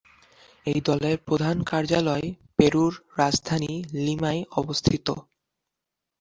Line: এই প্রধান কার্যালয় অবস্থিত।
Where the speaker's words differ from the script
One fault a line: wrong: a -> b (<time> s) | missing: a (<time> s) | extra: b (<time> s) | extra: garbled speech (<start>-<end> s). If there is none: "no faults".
extra: দলের (0.9 s)
extra: পেরুর রাজধানী লিমায় (2.6 s)